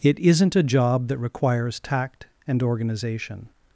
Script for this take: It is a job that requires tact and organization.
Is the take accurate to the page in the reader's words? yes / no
no